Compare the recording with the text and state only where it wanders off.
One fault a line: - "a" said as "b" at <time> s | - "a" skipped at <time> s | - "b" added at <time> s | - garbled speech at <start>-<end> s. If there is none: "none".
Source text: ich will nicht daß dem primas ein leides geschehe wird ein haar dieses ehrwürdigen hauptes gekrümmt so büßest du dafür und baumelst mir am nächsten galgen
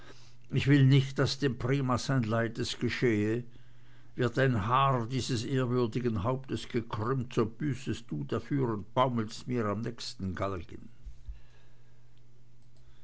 none